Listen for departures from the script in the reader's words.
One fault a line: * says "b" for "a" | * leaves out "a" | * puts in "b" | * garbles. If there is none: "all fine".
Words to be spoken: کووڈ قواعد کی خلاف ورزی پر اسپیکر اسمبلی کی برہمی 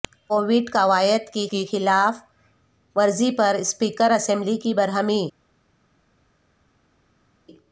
* puts in "کی"